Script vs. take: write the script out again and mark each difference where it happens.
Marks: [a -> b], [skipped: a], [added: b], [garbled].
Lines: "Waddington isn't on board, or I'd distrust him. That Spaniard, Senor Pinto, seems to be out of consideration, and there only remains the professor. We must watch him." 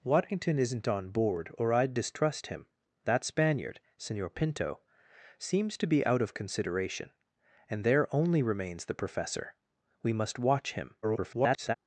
"Waddington isn't on board, or I'd distrust him. That Spaniard, Senor Pinto, seems to be out of consideration, and there only remains the professor. We must watch him." [garbled]